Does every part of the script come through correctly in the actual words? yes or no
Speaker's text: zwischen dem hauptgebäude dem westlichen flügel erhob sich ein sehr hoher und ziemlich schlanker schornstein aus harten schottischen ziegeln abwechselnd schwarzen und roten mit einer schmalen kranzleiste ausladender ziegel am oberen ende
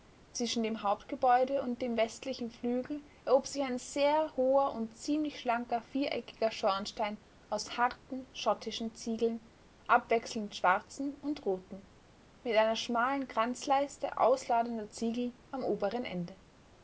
no